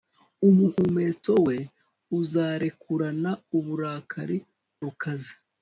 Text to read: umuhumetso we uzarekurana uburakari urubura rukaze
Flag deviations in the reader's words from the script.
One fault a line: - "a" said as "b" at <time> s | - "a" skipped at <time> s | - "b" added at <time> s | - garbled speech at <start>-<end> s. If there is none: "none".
- "urubura" skipped at 4.4 s